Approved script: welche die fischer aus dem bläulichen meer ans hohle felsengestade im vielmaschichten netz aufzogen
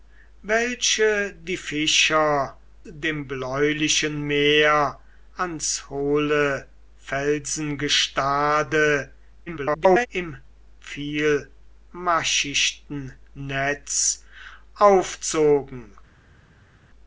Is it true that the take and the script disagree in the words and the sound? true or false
true